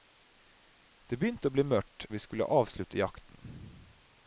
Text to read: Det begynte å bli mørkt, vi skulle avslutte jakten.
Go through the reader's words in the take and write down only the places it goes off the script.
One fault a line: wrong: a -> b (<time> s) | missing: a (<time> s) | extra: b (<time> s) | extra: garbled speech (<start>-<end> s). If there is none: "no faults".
no faults